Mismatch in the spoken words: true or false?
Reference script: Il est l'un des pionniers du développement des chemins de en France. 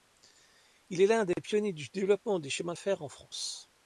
true